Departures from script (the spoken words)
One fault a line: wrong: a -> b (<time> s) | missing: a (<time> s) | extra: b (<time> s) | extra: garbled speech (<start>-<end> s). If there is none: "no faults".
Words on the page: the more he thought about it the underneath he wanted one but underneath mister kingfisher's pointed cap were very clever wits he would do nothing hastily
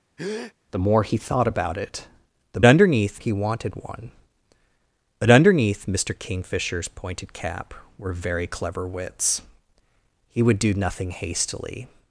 no faults